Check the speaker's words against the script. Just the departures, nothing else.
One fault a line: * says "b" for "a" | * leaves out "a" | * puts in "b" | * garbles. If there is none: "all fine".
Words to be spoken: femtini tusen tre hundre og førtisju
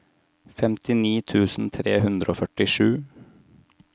all fine